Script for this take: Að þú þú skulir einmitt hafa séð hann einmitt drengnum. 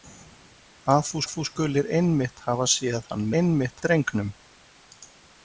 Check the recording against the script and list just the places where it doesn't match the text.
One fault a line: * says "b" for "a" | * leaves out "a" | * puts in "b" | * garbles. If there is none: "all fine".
all fine